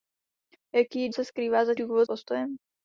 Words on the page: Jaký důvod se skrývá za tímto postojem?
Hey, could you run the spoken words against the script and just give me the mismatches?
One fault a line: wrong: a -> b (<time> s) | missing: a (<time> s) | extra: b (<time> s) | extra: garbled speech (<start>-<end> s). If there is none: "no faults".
missing: důvod (1.1 s)
wrong: tímto -> důvod (1.7 s)